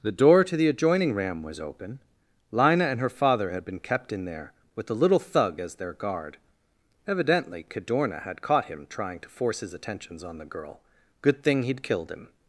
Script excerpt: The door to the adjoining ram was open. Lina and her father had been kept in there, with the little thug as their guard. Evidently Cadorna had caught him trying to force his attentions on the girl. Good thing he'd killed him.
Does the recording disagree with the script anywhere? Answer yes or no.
no